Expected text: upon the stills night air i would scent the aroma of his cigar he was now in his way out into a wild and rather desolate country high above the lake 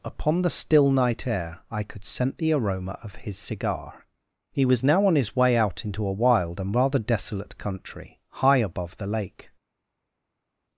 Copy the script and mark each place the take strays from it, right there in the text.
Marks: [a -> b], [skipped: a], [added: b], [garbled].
upon the [stills -> still] night air i [would -> could] scent the aroma of his cigar he was now [in -> on] his way out into a wild and rather desolate country high above the lake